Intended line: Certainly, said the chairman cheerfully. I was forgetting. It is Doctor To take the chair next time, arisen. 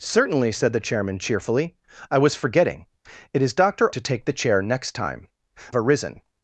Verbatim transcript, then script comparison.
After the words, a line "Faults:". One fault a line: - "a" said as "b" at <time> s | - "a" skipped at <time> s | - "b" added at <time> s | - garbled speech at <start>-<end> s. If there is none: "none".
Certainly, said the chairman cheerfully. I was forgetting. It is Doctor To take the chair next time, arisen.
Faults:
none